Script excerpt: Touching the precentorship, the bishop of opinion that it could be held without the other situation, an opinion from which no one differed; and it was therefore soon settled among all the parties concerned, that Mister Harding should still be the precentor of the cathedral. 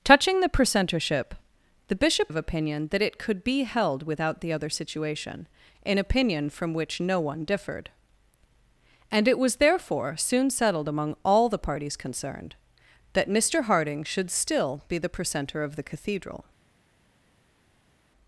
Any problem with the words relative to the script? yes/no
no